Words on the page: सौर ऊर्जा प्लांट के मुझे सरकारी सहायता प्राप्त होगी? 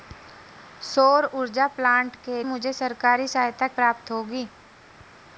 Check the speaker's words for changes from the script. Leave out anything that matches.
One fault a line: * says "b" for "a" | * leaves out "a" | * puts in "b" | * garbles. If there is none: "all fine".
all fine